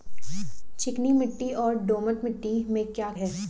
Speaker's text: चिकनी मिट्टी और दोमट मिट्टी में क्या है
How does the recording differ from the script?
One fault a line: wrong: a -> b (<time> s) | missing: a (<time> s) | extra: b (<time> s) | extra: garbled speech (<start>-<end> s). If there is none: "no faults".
no faults